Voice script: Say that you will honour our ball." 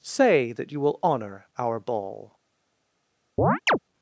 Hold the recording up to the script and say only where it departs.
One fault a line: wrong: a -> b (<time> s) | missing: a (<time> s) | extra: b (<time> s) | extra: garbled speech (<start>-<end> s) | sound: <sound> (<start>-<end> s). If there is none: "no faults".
sound: chirp (3.4-3.8 s)